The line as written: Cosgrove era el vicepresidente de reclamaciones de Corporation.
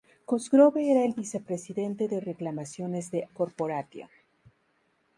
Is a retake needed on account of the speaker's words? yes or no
no